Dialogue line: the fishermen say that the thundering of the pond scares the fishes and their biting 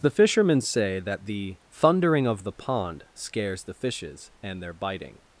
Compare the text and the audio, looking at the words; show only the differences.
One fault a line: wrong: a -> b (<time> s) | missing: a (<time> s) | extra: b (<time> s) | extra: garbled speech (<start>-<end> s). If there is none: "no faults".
no faults